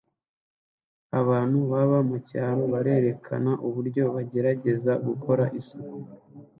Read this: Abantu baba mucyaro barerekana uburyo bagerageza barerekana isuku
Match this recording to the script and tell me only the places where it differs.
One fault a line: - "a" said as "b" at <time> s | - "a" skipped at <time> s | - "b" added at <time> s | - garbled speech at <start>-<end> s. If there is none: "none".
- "barerekana" said as "gukora" at 5.1 s